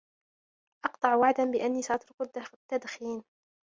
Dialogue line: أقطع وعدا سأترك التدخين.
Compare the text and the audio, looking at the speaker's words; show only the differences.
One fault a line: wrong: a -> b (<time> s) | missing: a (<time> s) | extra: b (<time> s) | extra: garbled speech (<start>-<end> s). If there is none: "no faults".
extra: بأني (1.4 s)